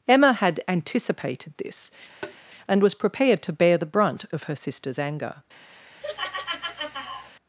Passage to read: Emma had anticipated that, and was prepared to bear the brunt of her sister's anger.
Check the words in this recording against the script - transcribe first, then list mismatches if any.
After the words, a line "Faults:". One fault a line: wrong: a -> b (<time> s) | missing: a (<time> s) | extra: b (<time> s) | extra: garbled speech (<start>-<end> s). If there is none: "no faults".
Emma had anticipated this, and was prepared to bear the brunt of her sister's anger.
Faults:
wrong: that -> this (1.6 s)